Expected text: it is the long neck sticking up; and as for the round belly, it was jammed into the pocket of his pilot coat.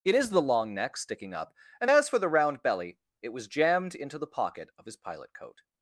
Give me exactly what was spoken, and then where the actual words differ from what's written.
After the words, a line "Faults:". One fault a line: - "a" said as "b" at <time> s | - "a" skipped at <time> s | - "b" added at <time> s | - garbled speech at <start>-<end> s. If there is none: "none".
it is the long neck sticking up; and as for the round belly, it was jammed into the pocket of his pilot coat.
Faults:
none